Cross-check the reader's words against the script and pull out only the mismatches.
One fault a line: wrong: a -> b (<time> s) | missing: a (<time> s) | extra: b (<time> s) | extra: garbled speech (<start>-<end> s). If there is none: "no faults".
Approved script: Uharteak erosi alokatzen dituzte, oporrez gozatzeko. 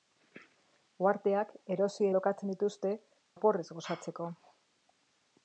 no faults